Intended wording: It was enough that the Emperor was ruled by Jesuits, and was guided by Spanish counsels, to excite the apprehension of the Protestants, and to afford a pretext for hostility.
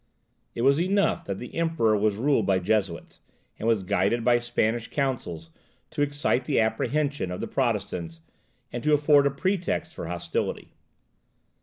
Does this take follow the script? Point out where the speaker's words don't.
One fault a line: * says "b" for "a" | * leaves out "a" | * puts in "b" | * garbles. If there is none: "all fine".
all fine